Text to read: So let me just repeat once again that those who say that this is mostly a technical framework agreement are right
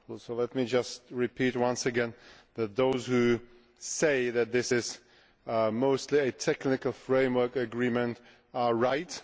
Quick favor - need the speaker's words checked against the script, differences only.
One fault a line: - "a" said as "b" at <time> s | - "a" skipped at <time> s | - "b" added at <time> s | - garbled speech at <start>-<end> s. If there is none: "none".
none